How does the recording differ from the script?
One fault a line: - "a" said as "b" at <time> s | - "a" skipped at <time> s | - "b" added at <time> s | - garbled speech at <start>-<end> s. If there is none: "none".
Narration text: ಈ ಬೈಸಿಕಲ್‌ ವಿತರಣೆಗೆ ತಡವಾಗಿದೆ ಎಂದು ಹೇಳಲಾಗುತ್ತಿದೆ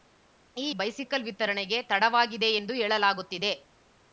none